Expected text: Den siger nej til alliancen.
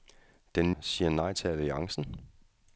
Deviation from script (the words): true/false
false